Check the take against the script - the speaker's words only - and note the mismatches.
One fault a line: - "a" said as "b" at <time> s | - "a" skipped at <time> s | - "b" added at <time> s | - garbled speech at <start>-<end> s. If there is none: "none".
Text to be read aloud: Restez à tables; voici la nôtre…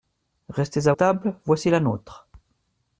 none